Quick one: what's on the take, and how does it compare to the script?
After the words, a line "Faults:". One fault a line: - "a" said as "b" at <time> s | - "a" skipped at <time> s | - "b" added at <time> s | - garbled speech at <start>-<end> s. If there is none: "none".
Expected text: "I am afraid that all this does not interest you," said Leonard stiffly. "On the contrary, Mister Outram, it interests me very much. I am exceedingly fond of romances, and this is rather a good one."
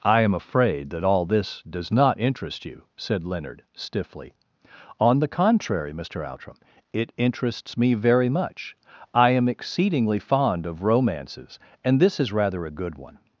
"I am afraid that all this does not interest you," said Leonard stiffly. "On the contrary, Mister Outram, it interests me very much. I am exceedingly fond of romances, and this is rather a good one."
Faults:
none